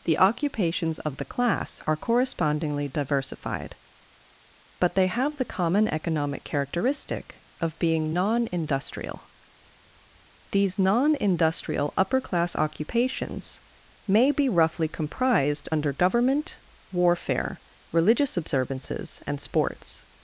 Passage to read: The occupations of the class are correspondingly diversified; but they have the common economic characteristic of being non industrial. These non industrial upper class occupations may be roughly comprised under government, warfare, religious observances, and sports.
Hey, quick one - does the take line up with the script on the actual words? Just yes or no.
yes